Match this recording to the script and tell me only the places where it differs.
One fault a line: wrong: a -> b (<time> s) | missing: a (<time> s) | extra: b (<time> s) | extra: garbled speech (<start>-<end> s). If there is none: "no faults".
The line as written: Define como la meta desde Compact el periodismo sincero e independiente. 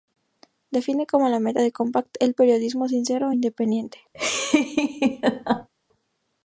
wrong: desde -> de (1.6 s)